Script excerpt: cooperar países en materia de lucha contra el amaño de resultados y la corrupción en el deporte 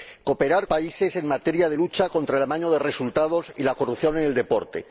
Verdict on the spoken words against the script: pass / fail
pass